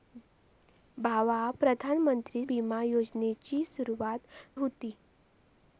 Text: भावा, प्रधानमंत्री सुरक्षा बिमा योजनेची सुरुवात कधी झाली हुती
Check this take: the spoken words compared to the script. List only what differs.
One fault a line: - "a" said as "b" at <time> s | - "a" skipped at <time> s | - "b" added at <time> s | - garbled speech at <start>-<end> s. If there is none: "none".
- "सुरक्षा" skipped at 2.4 s
- "कधी झाली" skipped at 4.2 s